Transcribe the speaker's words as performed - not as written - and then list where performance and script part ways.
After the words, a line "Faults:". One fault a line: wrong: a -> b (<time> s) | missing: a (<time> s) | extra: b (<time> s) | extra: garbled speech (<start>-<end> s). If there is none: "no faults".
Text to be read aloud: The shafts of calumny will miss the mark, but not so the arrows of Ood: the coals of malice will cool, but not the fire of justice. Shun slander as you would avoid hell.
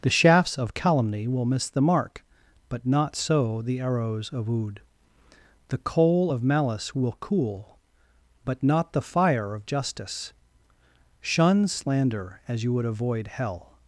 The shafts of calumny will miss the mark, but not so the arrows of Ood: the coal of malice will cool, but not the fire of justice. Shun slander as you would avoid hell.
Faults:
wrong: coals -> coal (5.8 s)